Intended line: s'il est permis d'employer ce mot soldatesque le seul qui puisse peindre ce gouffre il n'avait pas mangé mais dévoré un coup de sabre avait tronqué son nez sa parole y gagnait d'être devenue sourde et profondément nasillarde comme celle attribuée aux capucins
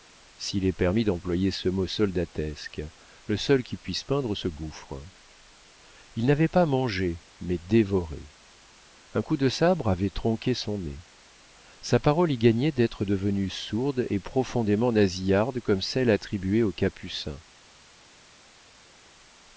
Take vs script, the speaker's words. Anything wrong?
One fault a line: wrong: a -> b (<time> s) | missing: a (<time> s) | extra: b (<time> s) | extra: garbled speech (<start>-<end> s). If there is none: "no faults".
no faults